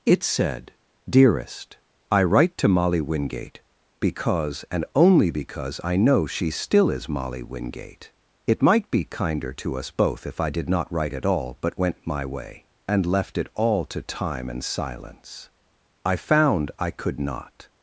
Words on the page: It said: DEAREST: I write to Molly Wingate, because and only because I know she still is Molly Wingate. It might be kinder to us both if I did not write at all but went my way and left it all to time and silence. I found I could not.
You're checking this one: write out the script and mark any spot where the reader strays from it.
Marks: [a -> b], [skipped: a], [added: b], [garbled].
It said: DEAREST: I write to Molly Wingate, because and only because I know she still is Molly Wingate. It might be kinder to us both if I did not write at all but went my way and left it all to time and silence. I found I could not.